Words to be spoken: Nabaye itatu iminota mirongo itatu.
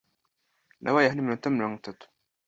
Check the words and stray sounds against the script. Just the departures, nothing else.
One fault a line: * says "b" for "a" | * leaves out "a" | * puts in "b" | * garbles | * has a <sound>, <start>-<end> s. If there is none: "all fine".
* says "hano" for "itatu"